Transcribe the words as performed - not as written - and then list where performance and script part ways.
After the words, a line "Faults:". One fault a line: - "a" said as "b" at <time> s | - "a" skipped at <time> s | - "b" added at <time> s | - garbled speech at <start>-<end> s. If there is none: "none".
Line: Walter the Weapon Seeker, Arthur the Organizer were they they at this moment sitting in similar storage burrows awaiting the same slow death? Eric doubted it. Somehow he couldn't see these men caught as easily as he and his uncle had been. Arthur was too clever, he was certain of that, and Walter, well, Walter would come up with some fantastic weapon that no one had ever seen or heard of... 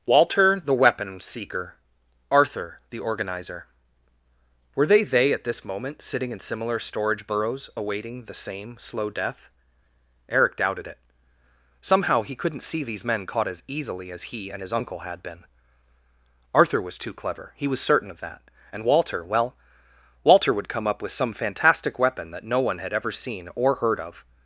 Walter the Weapon Seeker, Arthur the Organizer were they they at this moment sitting in similar storage burrows awaiting the same slow death? Eric doubted it. Somehow he couldn't see these men caught as easily as he and his uncle had been. Arthur was too clever, he was certain of that, and Walter, well, Walter would come up with some fantastic weapon that no one had ever seen or heard of...
Faults:
none